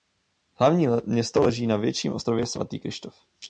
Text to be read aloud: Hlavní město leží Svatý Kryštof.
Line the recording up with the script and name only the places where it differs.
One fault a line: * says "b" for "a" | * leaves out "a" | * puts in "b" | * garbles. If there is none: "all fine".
* puts in "na větším ostrově"